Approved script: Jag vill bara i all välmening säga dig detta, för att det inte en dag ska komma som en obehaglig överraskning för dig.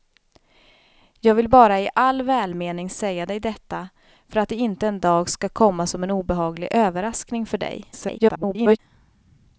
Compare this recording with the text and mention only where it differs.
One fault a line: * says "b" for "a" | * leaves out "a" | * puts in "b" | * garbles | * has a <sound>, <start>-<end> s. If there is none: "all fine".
* garbles